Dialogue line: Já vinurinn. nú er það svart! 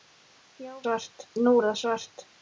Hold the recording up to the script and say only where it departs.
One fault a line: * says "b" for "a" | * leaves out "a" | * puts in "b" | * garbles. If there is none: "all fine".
* says "svart" for "vinurinn"